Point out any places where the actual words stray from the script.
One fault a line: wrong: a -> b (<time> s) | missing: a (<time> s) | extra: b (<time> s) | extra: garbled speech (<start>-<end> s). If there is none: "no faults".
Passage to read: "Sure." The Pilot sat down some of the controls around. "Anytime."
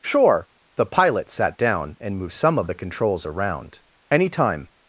extra: and moved (2.0 s)